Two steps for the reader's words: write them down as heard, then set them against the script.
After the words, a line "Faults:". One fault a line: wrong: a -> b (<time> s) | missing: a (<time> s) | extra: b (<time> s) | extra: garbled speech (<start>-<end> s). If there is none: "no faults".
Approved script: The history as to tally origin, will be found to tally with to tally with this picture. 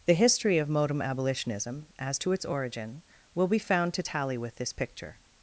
The history of modem abolitionism, as to its origin, will be found to tally with this picture.
Faults:
extra: of modem abolitionism (0.6 s)
wrong: tally -> its (2.3 s)
missing: to tally with (4.5 s)